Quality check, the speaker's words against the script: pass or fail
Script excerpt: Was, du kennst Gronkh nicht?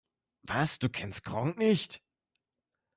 pass